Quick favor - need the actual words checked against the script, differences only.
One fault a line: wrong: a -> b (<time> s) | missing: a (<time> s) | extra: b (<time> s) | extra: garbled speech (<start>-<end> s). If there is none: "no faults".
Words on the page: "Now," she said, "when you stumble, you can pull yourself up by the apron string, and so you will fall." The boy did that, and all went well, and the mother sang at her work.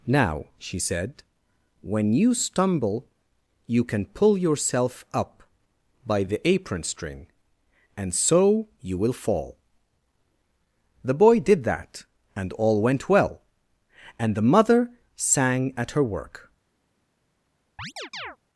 no faults